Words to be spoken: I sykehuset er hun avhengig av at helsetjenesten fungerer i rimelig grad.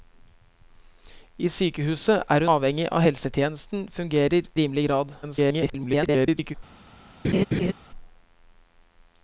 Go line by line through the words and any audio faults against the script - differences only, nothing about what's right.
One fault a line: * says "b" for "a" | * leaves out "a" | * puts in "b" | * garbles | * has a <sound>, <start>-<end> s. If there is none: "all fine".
* leaves out "hun"
* leaves out "i"
* garbles
* has a laugh, 7.2-7.7 s